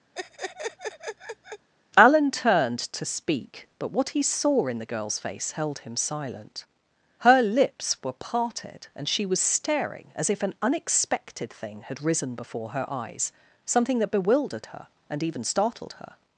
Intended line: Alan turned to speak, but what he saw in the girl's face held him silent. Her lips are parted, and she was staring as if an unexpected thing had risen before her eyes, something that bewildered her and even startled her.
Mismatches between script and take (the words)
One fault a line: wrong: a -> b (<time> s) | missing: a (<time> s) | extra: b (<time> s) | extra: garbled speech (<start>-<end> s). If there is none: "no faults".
wrong: are -> were (8.0 s)